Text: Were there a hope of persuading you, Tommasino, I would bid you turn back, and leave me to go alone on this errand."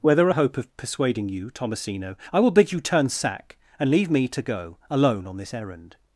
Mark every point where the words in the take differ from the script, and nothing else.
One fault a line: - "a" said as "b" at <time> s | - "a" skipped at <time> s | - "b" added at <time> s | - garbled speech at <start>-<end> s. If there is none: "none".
- "would" said as "will" at 2.4 s
- "back" said as "sack" at 3.1 s